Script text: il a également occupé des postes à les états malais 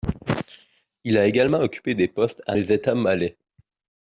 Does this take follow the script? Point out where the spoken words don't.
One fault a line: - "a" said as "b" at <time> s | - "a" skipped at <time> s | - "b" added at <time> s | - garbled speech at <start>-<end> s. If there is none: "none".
none